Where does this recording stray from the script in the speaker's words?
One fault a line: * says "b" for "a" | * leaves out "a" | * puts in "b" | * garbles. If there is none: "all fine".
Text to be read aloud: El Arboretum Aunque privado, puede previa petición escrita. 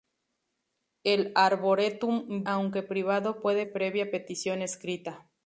all fine